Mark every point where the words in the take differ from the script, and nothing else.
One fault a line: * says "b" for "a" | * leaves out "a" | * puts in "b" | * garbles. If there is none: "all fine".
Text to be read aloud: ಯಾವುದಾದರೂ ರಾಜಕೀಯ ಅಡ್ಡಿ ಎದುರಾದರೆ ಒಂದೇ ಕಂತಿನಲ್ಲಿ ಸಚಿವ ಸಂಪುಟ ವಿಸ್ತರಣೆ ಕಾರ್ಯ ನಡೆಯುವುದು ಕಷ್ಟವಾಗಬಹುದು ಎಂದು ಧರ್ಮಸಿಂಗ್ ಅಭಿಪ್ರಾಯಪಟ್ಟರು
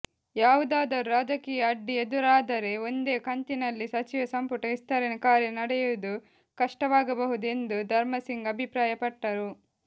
all fine